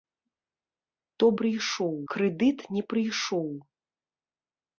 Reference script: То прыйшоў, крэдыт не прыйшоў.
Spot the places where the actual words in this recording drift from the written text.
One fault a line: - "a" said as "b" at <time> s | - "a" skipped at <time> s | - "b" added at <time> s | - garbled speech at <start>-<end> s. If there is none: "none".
none